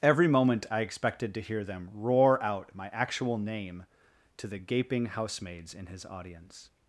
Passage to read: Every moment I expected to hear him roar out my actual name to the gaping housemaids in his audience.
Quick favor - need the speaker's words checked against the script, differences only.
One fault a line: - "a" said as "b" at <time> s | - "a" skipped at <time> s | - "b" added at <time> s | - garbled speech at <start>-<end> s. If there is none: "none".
- "him" said as "them" at 1.6 s